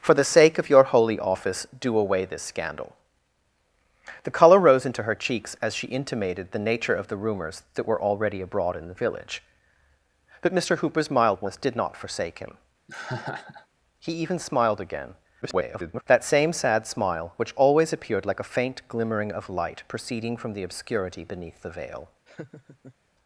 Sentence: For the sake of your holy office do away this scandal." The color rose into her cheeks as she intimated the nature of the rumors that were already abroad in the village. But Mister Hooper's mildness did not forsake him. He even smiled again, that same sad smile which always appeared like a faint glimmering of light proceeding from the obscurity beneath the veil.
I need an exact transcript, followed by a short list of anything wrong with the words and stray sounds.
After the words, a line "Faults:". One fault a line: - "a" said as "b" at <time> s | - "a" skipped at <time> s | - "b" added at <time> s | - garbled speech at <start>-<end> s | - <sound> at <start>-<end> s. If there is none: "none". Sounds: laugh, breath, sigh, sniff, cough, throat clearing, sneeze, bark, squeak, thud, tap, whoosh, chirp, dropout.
For the sake of your holy office do away this scandal." The color rose into her cheeks as she intimated the nature of the rumors that were already abroad in the village. But Mister Hooper's mildness did not forsake him. He even smiled again, [garbled] that same sad smile which always appeared like a faint glimmering of light proceeding from the obscurity beneath the veil.
Faults:
- laugh at 12.9-13.7 s
- garbled speech at 15.4-16.0 s
- laugh at 22.3-23.0 s